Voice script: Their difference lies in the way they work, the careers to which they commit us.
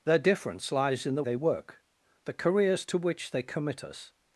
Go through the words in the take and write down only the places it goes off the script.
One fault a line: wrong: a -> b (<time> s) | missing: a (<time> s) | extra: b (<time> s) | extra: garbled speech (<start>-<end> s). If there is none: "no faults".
missing: way (1.2 s)